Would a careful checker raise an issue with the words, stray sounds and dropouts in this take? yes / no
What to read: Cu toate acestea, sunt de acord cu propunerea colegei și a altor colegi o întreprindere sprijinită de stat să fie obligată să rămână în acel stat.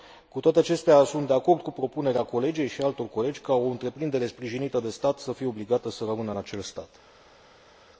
yes